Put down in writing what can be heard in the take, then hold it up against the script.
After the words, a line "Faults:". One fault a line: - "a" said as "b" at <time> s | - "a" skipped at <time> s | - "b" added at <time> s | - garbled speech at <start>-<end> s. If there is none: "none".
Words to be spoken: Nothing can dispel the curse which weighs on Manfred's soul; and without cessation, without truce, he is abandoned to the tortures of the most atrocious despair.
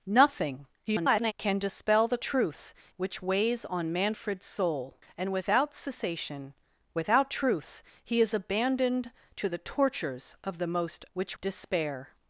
Nothing [garbled] can dispel the truce which weighs on Manfred's soul; and without cessation, without truce, he is abandoned to the tortures of the most which despair.
Faults:
- garbled speech at 0.9-1.3 s
- "curse" said as "truce" at 2.2 s
- "atrocious" said as "which" at 11.1 s